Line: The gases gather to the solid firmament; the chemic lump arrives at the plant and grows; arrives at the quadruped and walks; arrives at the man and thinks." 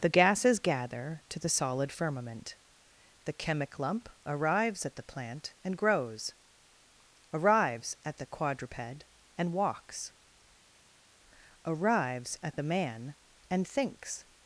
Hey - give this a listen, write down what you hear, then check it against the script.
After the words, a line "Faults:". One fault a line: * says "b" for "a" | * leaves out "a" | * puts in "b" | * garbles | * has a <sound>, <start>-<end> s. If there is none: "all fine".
The gases gather to the solid firmament; the chemic lump arrives at the plant and grows; arrives at the quadruped and walks; arrives at the man and thinks."
Faults:
all fine